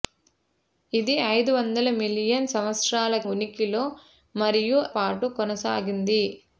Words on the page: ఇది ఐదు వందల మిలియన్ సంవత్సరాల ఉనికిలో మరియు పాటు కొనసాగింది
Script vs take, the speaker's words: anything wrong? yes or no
no